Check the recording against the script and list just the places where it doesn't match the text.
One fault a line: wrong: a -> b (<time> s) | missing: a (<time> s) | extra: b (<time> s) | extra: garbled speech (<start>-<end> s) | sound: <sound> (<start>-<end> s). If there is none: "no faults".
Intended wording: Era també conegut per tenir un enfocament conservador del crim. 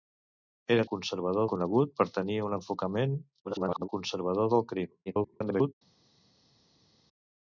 wrong: també -> conservador (1.0 s)
extra: garbled speech (3.4-3.9 s)
extra: garbled speech (5.1-5.7 s)